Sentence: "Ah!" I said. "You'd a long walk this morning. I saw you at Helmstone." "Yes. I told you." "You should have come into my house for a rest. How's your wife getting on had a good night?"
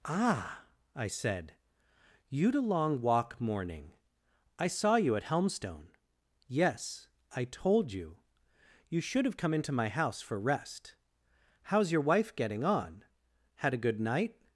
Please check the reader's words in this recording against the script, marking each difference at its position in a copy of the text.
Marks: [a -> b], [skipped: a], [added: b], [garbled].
"Ah!" I said. "You'd a long walk [skipped: this] morning. I saw you at Helmstone." "Yes. I told you." "You should have come into my house for [skipped: a] rest. How's your wife getting on had a good night?"